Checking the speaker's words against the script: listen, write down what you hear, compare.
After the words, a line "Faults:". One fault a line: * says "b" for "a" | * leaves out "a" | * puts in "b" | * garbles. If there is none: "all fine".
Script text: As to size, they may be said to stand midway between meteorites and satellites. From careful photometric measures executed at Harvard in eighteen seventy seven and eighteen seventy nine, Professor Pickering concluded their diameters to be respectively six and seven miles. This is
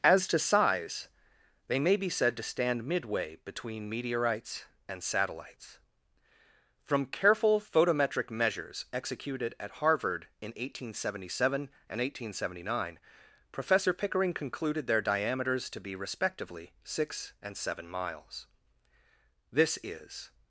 As to size, they may be said to stand midway between meteorites and satellites. From careful photometric measures executed at Harvard in eighteen seventy seven and eighteen seventy nine, Professor Pickering concluded their diameters to be respectively six and seven miles. This is
Faults:
all fine